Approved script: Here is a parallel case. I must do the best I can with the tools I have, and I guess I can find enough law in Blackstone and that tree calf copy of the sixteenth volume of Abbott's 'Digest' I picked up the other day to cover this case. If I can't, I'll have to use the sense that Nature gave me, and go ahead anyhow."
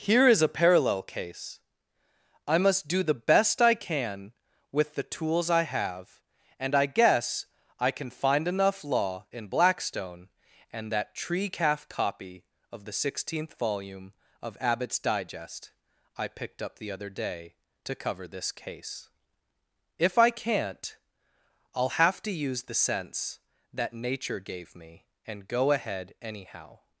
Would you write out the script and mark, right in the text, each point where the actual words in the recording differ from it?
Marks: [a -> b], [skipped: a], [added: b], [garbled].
Here is a parallel case. I must do the best I can with the tools I have, and I guess I can find enough law in Blackstone and that tree calf copy of the sixteenth volume of Abbott's 'Digest' I picked up the other day to cover this case. If I can't, I'll have to use the sense that Nature gave me, and go ahead anyhow."